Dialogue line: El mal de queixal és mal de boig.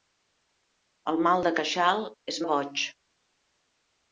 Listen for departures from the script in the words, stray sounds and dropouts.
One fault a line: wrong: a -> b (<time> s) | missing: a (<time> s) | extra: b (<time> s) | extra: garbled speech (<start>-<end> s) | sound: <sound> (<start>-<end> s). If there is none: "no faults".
missing: mal (2.4 s)